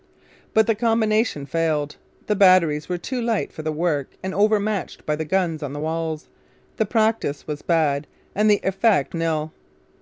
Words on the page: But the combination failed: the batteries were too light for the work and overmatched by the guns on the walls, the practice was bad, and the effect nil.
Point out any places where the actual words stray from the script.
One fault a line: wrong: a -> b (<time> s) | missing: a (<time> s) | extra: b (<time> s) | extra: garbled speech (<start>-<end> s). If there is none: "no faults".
no faults